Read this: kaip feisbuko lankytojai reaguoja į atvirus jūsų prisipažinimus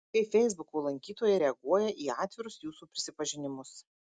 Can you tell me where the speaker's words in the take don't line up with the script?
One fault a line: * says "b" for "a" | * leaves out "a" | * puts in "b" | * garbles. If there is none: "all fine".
all fine